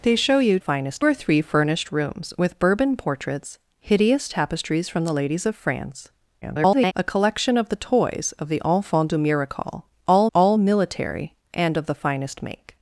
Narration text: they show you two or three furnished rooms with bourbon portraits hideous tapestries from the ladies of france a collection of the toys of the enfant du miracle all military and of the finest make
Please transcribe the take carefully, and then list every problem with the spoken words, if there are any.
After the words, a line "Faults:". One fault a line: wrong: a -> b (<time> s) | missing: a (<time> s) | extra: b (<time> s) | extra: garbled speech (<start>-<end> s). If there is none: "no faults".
they show you finest or three furnished rooms with bourbon portraits hideous tapestries from the ladies of france [garbled] a collection of the toys of the enfant du miracle all all military and of the finest make
Faults:
wrong: two -> finest (0.6 s)
extra: garbled speech (6.4-6.9 s)
extra: all (10.3 s)